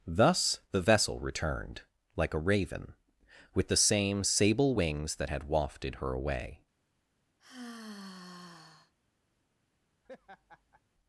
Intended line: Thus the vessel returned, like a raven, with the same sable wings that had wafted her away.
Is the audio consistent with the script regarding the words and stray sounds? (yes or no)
no